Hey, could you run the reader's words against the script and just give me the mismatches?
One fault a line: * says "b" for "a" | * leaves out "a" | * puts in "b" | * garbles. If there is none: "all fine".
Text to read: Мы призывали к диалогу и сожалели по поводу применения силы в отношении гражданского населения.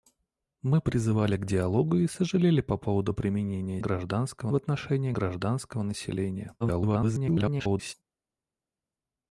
* says "гражданского" for "силы"
* garbles